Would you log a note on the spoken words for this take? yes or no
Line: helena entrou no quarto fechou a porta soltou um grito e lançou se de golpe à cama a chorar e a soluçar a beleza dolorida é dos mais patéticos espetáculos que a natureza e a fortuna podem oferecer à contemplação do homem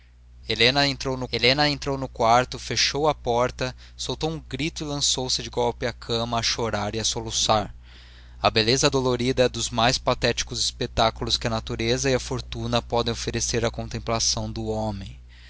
yes